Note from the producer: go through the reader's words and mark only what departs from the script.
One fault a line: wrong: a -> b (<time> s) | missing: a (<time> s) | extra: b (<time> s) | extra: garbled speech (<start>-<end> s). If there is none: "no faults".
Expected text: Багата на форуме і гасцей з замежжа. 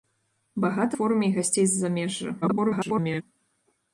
missing: на (1.0 s)
extra: garbled speech (2.4-3.2 s)